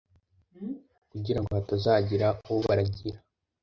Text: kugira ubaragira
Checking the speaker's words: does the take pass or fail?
fail